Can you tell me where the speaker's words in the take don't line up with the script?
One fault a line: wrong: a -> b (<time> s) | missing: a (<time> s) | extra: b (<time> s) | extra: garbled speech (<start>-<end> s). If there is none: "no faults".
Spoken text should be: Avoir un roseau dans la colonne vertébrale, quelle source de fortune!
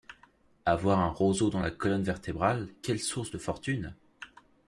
no faults